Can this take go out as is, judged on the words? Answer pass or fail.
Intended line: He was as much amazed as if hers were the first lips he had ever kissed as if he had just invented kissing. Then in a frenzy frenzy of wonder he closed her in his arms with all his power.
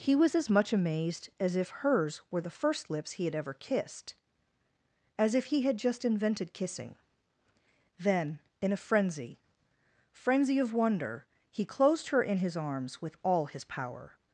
pass